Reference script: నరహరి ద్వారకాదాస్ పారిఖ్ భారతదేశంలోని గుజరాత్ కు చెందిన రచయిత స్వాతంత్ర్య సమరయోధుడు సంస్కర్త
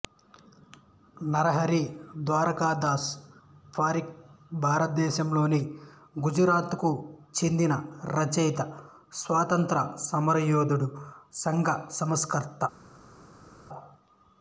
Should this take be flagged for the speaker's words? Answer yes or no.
yes